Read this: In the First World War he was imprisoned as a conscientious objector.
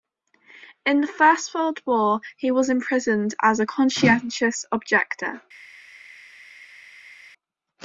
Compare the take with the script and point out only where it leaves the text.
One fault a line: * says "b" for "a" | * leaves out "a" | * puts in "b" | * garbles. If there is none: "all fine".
all fine